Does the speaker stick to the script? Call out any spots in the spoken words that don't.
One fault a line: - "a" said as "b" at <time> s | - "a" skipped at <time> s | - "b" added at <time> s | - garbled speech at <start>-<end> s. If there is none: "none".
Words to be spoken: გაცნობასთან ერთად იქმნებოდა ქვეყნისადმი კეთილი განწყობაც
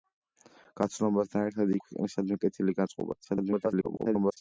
- "იქმნებოდა" skipped at 1.7 s
- garbled speech at 3.2-4.4 s